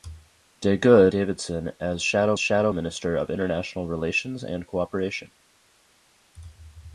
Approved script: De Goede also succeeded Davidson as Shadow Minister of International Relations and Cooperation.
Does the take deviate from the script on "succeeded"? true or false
true